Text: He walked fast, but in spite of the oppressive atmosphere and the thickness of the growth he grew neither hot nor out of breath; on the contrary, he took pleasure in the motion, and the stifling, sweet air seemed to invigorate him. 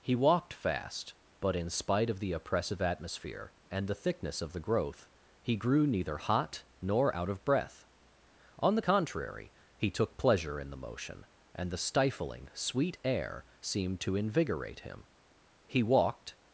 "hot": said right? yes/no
yes